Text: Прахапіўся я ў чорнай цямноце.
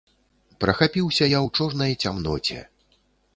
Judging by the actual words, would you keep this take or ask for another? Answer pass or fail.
pass